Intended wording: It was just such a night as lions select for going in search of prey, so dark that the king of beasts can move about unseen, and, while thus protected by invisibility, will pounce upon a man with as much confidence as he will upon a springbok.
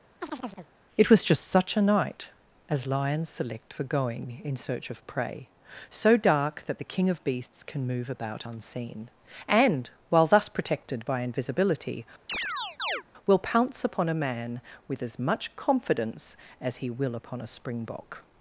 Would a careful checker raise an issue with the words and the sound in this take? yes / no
yes